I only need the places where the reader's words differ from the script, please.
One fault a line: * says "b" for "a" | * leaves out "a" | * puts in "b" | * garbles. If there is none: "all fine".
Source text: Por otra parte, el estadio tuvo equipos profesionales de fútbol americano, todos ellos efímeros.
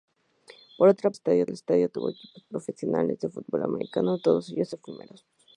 * says "estadio" for "parte"